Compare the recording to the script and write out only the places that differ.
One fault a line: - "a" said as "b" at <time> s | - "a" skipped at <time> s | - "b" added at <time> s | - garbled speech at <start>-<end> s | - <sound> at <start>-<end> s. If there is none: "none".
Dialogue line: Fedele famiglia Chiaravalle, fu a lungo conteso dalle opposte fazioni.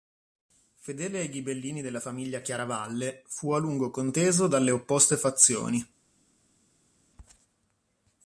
- "ai ghibellini della" added at 1.2 s